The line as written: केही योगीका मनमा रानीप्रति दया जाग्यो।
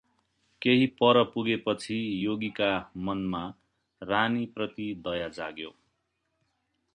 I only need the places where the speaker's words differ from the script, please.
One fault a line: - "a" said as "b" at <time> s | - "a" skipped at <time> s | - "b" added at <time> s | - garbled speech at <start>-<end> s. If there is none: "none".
- "पर पुगेपछि" added at 0.8 s